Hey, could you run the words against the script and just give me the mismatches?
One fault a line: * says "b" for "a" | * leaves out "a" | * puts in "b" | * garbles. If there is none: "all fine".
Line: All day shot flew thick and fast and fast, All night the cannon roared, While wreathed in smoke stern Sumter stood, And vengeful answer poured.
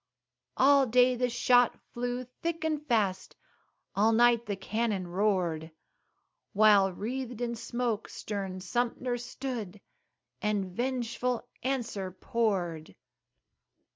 * puts in "the"
* leaves out "and fast"